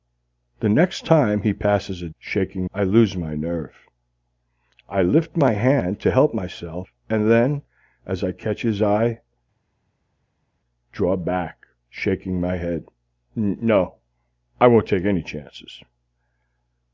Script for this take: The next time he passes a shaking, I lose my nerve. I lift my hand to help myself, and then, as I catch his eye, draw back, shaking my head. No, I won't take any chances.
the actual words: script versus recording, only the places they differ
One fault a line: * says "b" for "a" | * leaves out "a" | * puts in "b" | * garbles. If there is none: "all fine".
all fine